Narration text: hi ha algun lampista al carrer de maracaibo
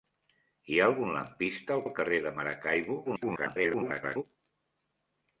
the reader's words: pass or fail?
fail